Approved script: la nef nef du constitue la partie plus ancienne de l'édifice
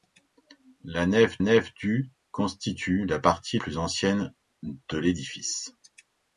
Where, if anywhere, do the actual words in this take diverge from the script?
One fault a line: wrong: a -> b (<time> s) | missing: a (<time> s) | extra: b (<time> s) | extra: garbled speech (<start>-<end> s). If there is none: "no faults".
no faults